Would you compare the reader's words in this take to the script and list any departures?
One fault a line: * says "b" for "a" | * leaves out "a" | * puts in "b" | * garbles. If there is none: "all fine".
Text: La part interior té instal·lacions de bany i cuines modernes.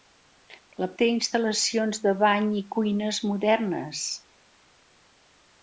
* leaves out "part interior"